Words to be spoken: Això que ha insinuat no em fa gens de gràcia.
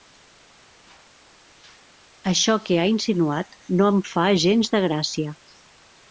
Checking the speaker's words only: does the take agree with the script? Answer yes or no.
yes